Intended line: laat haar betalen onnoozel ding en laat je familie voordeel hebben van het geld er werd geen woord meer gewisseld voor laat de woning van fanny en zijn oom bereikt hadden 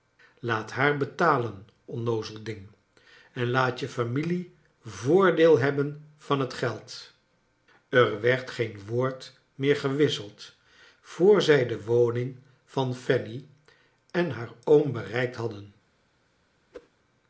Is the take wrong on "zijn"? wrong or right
wrong